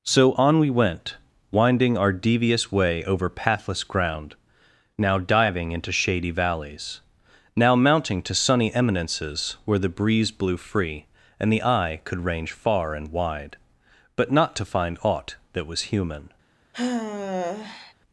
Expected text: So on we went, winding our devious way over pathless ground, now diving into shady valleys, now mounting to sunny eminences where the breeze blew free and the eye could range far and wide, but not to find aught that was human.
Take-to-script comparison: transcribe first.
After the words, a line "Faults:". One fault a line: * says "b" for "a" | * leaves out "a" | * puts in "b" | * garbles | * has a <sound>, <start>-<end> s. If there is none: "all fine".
So on we went, winding our devious way over pathless ground, now diving into shady valleys, now mounting to sunny eminences where the breeze blew free and the eye could range far and wide, but not to find aught that was human.
Faults:
* has a sigh, 16.7-17.9 s